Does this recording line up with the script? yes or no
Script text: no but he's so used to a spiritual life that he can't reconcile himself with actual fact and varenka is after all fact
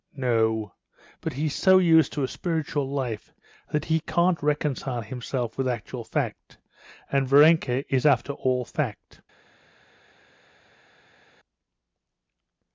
yes